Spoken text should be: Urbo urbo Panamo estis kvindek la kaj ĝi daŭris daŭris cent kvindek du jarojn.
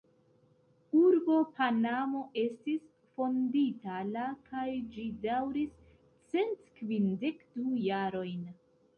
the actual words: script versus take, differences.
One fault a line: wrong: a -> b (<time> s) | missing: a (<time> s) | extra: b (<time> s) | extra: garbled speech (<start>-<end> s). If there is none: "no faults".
missing: urbo (1.3 s)
wrong: kvindek -> fondita (3.2 s)
missing: daŭris (5.7 s)